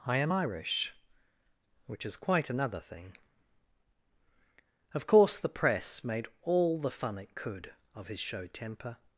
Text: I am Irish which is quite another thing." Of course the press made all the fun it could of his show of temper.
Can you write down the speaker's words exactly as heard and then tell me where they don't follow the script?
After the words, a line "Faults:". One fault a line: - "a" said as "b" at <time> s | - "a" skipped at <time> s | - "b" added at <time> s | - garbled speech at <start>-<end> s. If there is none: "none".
I am Irish which is quite another thing." Of course the press made all the fun it could of his show temper.
Faults:
- "of" skipped at 8.5 s